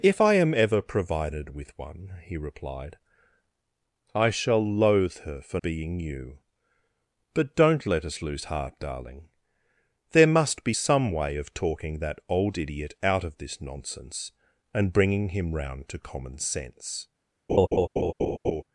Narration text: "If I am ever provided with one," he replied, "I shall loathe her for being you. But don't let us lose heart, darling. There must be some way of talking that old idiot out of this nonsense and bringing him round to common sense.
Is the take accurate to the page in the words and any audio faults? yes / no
no